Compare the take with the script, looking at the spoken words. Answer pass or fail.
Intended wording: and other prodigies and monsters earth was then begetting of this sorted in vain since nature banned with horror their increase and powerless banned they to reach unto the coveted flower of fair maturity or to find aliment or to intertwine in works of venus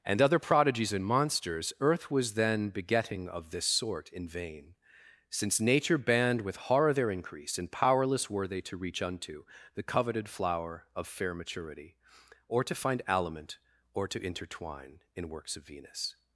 fail